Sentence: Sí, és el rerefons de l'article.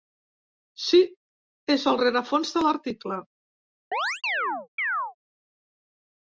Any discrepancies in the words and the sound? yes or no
yes